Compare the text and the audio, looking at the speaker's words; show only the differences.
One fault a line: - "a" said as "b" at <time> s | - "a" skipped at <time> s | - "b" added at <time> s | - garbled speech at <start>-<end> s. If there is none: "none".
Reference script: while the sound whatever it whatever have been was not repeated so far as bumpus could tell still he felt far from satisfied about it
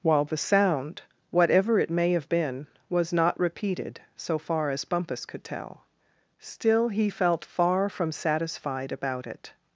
- "whatever" said as "may" at 1.9 s